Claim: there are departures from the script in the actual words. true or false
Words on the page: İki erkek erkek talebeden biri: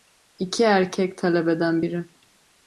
true